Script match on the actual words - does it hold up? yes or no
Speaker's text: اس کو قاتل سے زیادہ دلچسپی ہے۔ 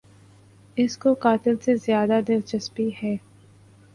yes